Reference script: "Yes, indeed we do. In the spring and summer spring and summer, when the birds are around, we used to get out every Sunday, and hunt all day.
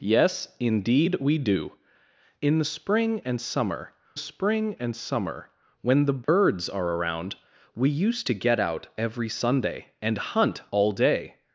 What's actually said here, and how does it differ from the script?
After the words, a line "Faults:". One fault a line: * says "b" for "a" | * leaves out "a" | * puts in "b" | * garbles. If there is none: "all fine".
"Yes, indeed we do. In the spring and summer spring and summer, when the birds are around, we used to get out every Sunday, and hunt all day.
Faults:
all fine